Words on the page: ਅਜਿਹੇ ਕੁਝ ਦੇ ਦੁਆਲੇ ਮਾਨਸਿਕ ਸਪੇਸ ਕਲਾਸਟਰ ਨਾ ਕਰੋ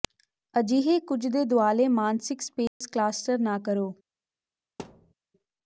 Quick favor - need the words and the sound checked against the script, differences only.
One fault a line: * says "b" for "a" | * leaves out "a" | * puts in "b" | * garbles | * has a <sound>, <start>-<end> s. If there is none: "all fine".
* has a dropout, 2.7-2.8 s
* has a thud, 4.8-5.1 s